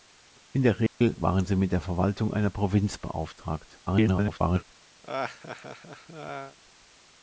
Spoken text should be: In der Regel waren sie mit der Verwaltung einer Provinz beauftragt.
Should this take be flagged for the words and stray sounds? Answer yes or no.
yes